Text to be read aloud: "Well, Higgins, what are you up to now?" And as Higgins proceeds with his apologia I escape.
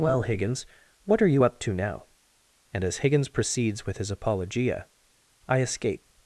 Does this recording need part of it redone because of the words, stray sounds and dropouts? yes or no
no